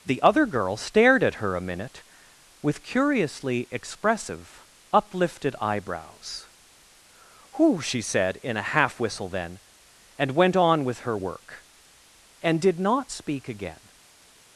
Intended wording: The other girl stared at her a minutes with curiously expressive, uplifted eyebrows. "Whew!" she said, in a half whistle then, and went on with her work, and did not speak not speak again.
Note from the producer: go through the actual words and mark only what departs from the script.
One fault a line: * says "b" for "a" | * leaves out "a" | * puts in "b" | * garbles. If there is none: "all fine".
* says "minute" for "minutes"
* leaves out "not speak"